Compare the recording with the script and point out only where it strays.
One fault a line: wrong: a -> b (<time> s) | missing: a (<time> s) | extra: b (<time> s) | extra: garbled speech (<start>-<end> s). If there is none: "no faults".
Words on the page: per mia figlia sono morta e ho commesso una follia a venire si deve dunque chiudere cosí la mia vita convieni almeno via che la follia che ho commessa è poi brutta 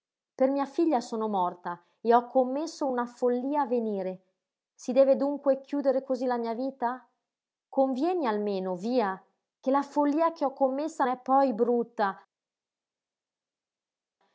no faults